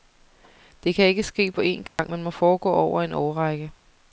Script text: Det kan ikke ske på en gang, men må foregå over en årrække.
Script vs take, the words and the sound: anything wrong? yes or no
yes